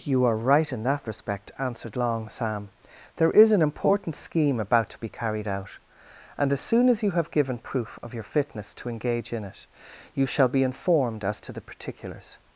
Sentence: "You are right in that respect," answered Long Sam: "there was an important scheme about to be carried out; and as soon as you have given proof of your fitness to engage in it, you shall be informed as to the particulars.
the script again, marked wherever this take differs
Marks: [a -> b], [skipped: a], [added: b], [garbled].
"You are right in that respect," answered Long Sam: "there [was -> is] an important scheme about to be carried out; and as soon as you have given proof of your fitness to engage in it, you shall be informed as to the particulars.